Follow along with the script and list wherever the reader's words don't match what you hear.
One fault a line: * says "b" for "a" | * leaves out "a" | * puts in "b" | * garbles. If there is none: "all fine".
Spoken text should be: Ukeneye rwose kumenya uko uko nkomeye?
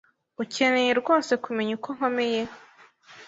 * leaves out "uko"